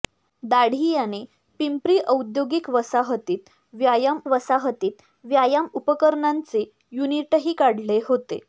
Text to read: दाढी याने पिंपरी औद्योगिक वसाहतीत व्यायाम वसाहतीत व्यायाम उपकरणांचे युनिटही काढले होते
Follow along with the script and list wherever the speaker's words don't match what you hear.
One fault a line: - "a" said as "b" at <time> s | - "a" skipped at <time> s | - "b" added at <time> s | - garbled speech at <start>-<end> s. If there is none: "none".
none